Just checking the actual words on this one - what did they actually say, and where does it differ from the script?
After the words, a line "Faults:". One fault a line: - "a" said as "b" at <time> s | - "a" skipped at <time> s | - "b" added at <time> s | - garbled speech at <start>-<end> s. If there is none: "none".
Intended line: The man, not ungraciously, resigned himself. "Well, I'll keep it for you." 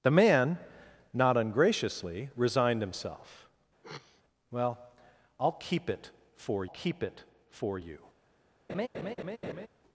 The man, not ungraciously, resigned himself. "Well, I'll keep it for keep it for you."
Faults:
- "keep it for" added at 6.7 s